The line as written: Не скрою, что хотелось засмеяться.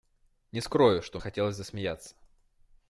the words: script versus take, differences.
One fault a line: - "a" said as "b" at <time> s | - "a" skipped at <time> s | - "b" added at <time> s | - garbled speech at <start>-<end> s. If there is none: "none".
none